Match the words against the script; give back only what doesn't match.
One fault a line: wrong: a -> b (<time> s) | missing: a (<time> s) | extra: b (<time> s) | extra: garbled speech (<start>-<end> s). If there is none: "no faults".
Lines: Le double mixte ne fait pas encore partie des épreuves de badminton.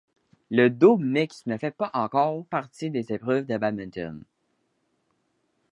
no faults